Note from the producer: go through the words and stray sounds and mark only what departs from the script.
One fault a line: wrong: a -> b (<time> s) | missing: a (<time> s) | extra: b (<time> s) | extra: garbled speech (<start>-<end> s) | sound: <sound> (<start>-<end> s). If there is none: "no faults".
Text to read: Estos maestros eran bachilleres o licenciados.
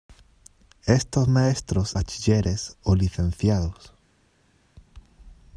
missing: eran (1.9 s)